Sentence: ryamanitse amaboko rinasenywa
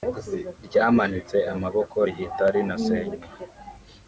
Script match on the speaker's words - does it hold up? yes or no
no